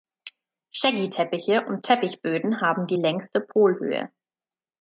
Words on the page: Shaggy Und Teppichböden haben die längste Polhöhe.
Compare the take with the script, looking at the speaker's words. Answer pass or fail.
fail